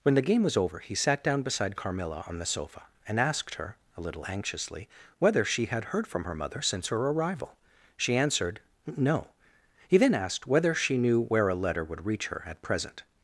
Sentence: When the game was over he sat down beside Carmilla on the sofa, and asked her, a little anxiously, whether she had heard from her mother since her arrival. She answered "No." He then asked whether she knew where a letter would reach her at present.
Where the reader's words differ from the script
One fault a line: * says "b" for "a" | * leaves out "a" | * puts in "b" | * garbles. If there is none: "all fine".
all fine